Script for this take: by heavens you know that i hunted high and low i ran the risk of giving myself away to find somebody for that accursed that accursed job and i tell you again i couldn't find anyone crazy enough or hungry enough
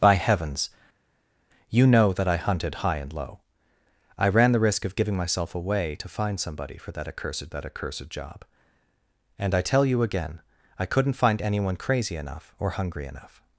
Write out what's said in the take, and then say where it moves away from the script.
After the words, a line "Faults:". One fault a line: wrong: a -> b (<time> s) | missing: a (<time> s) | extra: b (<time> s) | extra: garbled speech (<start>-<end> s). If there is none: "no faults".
by heavens you know that i hunted high and low i ran the risk of giving myself away to find somebody for that accursed that accursed job and i tell you again i couldn't find anyone crazy enough or hungry enough
Faults:
no faults